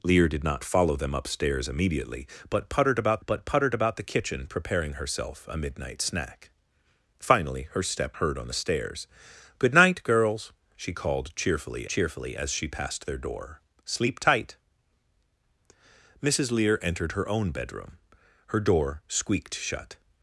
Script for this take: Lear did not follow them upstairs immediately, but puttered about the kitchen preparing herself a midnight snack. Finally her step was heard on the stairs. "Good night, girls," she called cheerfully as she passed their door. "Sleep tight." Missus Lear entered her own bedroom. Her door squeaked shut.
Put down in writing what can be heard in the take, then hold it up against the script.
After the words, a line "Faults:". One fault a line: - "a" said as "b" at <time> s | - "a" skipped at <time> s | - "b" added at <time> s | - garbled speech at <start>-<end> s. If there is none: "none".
Lear did not follow them upstairs immediately, but puttered about but puttered about the kitchen preparing herself a midnight snack. Finally her step heard on the stairs. "Good night, girls," she called cheerfully cheerfully as she passed their door. "Sleep tight." Missus Lear entered her own bedroom. Her door squeaked shut.
Faults:
- "but puttered about" added at 3.3 s
- "was" skipped at 8.2 s
- "cheerfully" added at 11.9 s